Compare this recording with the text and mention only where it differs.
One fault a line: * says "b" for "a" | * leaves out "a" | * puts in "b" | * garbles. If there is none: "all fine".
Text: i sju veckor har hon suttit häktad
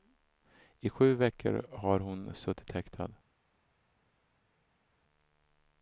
all fine